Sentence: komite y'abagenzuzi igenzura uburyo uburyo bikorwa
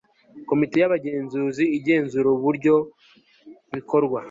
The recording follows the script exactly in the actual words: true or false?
false